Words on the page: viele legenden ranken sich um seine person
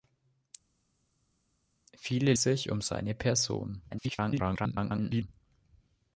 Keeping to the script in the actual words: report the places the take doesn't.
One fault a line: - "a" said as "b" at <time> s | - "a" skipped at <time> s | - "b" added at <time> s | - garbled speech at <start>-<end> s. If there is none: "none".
- "legenden ranken" skipped at 2.3 s
- garbled speech at 3.9-5.3 s